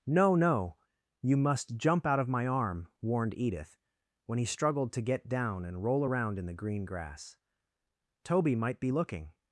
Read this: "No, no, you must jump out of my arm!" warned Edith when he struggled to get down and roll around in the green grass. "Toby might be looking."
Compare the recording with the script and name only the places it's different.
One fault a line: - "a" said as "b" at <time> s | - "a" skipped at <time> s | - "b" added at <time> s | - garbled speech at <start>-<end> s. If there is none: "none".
none